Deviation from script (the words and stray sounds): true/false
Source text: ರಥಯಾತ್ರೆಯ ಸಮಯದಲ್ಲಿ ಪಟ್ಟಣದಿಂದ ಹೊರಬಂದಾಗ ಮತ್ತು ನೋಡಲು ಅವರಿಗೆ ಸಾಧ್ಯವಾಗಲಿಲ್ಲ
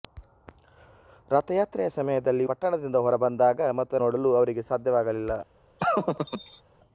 true